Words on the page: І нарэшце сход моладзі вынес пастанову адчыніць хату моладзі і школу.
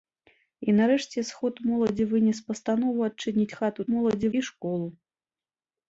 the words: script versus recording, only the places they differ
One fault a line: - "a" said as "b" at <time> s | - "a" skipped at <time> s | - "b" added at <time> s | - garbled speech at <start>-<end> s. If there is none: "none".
none